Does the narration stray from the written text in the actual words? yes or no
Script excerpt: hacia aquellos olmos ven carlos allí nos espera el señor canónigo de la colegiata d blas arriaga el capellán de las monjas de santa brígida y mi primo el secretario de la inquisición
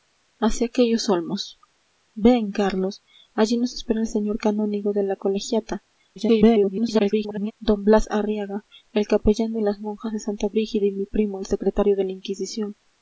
yes